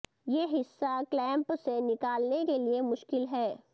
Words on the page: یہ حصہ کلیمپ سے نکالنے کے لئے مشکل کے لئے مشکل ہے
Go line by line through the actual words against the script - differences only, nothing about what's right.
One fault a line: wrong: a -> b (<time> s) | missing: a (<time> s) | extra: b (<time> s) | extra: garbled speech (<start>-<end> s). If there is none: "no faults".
missing: کے لئے مشکل (3.2 s)